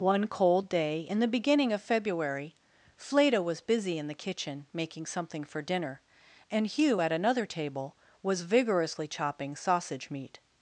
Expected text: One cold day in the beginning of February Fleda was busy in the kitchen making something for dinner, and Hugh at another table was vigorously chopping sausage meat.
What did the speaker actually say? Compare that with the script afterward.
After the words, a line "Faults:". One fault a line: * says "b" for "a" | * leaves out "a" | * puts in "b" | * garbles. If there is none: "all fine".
One cold day in the beginning of February Fleda was busy in the kitchen making something for dinner, and Hugh at another table was vigorously chopping sausage meat.
Faults:
all fine